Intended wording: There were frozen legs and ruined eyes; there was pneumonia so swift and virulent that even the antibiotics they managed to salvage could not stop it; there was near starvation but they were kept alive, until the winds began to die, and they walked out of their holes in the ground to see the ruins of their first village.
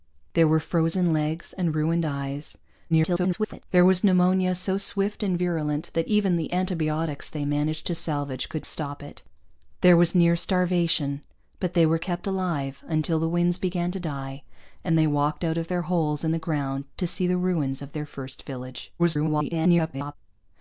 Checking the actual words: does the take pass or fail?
fail